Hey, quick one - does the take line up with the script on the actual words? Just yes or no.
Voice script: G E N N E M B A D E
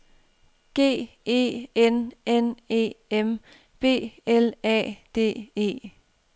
no